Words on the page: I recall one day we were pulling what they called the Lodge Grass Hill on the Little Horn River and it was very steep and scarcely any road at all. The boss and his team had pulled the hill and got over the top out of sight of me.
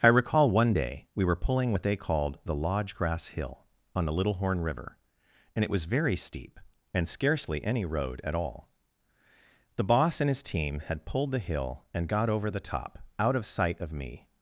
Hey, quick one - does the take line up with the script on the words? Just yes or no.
yes